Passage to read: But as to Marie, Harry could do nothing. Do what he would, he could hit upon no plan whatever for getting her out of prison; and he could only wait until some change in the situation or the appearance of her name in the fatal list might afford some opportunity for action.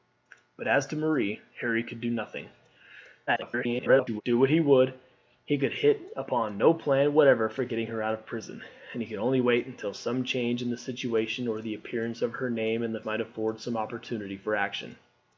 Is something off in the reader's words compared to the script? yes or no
yes